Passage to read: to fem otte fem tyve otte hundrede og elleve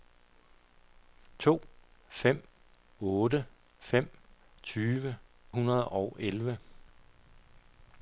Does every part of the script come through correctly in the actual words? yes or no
no